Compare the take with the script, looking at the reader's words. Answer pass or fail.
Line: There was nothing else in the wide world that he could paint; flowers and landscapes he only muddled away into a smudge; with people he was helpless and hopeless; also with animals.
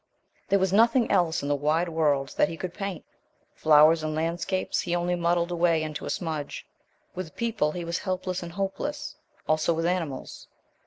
pass